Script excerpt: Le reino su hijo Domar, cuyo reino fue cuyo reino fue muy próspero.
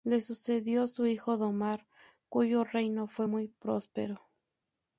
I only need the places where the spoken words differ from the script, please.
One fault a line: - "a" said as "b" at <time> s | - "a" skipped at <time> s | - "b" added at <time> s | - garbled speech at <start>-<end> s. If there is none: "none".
- "reino" said as "sucedió" at 0.2 s
- "cuyo reino fue" skipped at 3.3 s